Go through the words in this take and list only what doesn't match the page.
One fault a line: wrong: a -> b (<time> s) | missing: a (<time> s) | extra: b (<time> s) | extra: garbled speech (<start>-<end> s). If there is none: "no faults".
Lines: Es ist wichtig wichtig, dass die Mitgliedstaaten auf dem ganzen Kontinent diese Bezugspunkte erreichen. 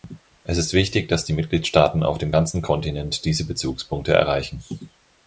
missing: wichtig (1.1 s)